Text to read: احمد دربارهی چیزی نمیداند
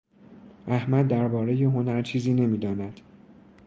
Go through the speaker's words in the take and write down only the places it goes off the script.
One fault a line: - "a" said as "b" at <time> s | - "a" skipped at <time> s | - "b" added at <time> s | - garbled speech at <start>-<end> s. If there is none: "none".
- "هنر" added at 1.6 s